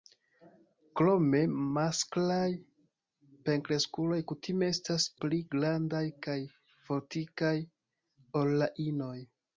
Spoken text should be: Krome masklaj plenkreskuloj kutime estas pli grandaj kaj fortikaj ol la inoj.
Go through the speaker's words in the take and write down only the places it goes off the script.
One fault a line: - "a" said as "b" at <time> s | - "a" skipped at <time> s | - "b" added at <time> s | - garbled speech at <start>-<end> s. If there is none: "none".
none